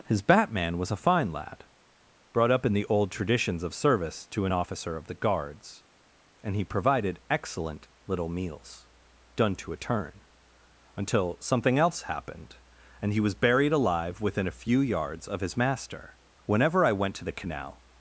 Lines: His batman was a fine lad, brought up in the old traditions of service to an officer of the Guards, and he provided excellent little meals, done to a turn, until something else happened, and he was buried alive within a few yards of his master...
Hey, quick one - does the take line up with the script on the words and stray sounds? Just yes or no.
no